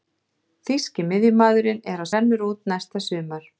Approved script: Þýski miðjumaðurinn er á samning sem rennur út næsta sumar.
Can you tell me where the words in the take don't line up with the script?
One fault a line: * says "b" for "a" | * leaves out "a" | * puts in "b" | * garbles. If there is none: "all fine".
* leaves out "samning sem"